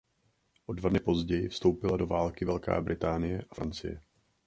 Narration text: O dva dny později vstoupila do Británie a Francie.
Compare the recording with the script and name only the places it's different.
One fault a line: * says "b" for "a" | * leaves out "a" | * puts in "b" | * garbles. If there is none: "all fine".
* puts in "války Velká"